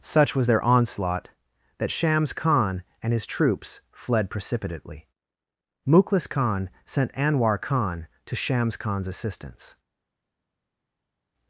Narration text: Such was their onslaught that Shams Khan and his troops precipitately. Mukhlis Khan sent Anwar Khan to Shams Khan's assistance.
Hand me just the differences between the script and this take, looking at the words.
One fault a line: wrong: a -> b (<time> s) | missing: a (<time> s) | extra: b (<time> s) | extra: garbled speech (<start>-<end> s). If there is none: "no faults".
extra: fled (3.9 s)